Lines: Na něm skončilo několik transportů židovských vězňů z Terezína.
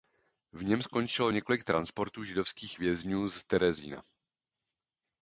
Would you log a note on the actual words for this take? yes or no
yes